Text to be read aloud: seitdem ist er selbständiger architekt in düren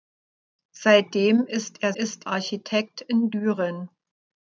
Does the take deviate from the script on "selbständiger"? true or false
true